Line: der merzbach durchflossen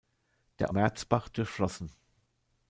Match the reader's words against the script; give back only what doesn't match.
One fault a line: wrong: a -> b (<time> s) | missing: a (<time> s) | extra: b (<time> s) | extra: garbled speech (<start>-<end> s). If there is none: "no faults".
no faults